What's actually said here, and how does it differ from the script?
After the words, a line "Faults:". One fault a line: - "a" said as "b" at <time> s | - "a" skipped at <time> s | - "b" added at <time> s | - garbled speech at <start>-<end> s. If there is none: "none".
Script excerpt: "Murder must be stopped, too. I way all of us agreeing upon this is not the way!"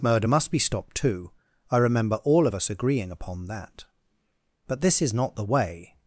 "Murder must be stopped, too. I remember all of us agreeing upon that. But this is not the way!"
Faults:
- "way" said as "remember" at 1.8 s
- "that But" added at 3.5 s